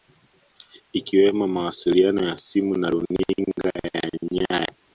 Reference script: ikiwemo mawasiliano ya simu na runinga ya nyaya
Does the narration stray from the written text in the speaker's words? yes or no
no